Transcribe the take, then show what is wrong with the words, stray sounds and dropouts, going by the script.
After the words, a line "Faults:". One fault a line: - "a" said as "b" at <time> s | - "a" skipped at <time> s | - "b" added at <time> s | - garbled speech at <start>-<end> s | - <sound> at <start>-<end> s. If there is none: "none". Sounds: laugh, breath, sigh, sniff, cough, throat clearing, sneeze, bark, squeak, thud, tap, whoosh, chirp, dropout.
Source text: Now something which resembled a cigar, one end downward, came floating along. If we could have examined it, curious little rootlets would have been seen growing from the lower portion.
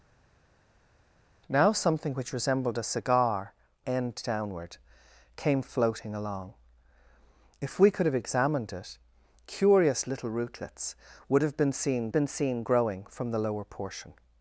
Now something which resembled a cigar, end downward, came floating along. If we could have examined it, curious little rootlets would have been seen been seen growing from the lower portion.
Faults:
- "one" skipped at 3.5 s
- "been seen" added at 12.1 s